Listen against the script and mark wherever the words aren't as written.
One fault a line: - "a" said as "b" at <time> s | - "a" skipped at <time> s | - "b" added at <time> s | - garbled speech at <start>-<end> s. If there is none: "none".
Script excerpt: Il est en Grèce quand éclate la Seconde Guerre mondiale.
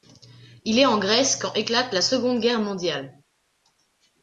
none